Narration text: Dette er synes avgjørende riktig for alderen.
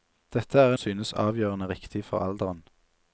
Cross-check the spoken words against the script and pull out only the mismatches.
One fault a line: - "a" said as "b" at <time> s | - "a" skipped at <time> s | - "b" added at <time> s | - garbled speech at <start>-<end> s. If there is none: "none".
none